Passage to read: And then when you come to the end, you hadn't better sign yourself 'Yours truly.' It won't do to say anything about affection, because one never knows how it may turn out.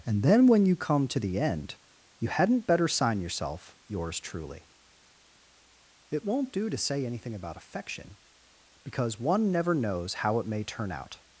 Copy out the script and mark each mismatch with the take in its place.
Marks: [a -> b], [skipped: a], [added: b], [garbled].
And then when you come to the end, you hadn't better sign yourself 'Yours truly.' It won't do to say anything about affection, because one never knows how it may turn out.